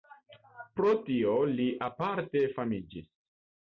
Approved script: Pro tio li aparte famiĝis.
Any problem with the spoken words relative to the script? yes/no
no